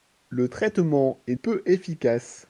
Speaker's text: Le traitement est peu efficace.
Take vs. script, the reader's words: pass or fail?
pass